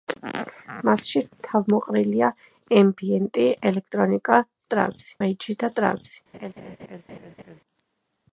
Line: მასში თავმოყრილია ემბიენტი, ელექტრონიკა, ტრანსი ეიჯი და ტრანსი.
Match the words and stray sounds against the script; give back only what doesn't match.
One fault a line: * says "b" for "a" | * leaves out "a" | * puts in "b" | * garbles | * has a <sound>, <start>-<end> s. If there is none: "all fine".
* has a laugh, 6.3-7.6 s